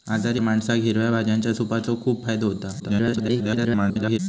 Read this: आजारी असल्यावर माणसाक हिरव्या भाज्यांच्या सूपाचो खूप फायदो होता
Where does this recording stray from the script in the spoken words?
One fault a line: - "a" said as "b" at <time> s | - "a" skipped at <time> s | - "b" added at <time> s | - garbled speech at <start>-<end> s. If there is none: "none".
- "असल्यावर" skipped at 0.4 s
- garbled speech at 2.8-4.2 s